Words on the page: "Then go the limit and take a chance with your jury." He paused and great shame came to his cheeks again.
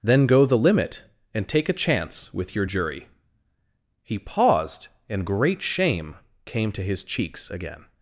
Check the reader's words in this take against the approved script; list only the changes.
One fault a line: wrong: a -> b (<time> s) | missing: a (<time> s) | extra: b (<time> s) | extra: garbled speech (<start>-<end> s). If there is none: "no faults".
no faults